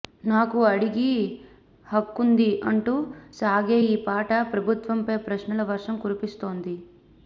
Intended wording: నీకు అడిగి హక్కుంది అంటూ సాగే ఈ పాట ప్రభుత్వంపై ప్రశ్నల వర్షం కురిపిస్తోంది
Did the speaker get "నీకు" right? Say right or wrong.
wrong